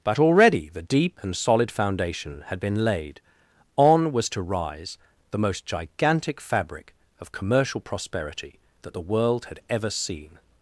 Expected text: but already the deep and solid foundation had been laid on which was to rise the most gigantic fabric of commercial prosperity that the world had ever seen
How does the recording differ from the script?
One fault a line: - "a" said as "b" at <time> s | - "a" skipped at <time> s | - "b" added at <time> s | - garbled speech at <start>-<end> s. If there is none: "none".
- "which" skipped at 4.1 s